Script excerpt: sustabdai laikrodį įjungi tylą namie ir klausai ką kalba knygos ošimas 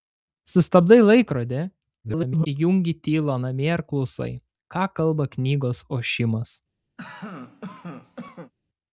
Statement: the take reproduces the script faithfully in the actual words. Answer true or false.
false